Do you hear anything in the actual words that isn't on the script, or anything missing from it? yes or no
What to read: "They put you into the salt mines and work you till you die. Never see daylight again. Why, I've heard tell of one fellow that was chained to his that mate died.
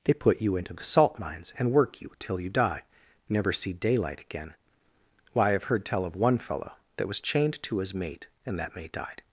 yes